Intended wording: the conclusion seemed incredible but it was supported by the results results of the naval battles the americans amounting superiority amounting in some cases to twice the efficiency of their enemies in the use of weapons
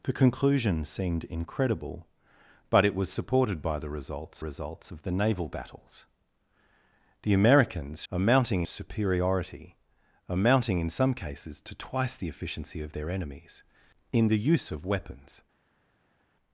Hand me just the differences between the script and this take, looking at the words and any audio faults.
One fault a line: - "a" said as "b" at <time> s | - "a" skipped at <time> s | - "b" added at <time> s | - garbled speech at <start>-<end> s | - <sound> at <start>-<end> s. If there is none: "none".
none